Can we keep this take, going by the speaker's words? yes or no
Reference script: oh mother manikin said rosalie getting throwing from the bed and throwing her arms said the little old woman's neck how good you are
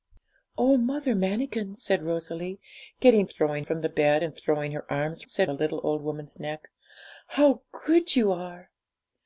yes